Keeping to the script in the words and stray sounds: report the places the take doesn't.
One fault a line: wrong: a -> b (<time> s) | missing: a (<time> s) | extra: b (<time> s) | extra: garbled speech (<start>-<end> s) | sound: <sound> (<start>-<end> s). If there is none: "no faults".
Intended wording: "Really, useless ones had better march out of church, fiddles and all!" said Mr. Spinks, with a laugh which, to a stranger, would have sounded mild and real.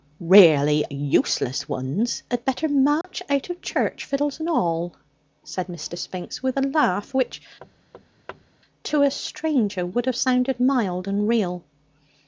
sound: dropout (3.0-3.0 s)
sound: thud (7.6-8.5 s)